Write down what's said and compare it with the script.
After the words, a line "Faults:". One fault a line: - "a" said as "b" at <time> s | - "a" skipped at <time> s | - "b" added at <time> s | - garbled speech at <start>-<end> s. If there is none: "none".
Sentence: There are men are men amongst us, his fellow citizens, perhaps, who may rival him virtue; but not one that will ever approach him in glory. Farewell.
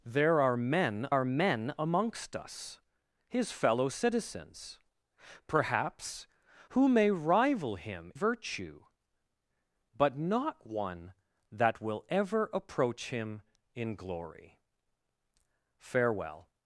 There are men are men amongst us, his fellow citizens, perhaps, who may rival him virtue; but not one that will ever approach him in glory. Farewell.
Faults:
none